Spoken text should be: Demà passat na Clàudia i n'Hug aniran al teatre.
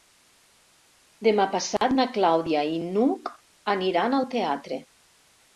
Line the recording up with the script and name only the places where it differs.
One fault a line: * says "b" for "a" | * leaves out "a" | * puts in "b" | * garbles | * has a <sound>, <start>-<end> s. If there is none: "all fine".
* has a dropout, 1.8-1.8 s